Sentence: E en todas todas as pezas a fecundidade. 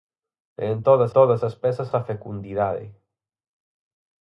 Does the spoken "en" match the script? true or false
true